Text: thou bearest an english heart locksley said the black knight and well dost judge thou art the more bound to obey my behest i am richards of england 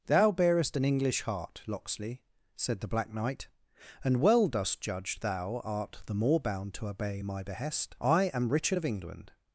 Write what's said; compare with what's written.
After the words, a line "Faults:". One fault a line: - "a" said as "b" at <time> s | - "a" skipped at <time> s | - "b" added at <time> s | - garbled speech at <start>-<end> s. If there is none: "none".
thou bearest an english heart locksley said the black knight and well dost judge thou art the more bound to obey my behest i am richard of england
Faults:
- "richards" said as "richard" at 8.5 s